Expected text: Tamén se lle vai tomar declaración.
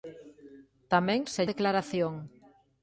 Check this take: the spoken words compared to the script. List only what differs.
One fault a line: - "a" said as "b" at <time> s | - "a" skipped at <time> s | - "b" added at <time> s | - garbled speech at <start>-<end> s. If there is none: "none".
- "lle vai tomar" skipped at 1.4 s